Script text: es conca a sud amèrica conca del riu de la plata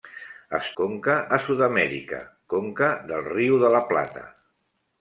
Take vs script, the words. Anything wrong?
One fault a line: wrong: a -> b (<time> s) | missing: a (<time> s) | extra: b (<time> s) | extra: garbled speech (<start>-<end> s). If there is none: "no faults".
no faults